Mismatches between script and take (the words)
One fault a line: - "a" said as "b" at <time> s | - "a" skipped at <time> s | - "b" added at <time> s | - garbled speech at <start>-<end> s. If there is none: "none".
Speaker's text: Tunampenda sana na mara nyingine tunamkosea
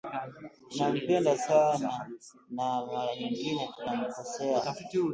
none